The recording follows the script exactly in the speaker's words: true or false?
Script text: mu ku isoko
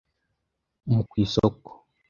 true